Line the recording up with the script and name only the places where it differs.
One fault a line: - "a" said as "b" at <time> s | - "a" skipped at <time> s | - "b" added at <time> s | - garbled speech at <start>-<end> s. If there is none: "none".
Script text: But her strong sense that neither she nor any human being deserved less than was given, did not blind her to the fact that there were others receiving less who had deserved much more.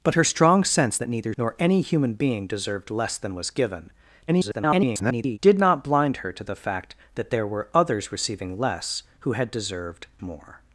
- "she" skipped at 1.3 s
- garbled speech at 4.3-5.4 s
- "much" skipped at 10.1 s